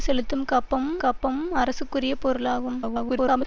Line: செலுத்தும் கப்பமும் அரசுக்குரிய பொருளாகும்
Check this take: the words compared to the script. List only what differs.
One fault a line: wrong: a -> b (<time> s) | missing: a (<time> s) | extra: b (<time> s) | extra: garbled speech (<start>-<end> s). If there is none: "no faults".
extra: கப்பமும் (1.0 s)
extra: garbled speech (2.8-3.5 s)